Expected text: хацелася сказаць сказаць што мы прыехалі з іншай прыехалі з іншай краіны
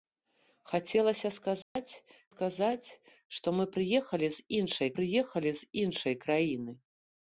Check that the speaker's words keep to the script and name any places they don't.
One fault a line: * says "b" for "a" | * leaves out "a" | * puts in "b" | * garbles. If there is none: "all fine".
all fine